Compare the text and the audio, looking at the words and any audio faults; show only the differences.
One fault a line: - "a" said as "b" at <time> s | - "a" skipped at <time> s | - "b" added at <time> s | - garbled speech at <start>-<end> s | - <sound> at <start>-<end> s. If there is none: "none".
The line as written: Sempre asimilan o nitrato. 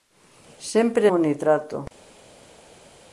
- "asimilan" skipped at 1.1 s